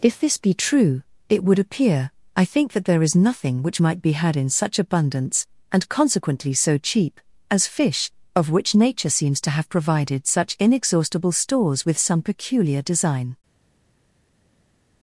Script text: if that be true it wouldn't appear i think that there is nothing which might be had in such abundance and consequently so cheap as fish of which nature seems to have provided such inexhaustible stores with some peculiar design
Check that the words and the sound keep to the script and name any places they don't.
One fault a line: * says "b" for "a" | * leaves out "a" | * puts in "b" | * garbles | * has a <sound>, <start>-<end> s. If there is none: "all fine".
* says "this" for "that"
* says "would" for "wouldn't"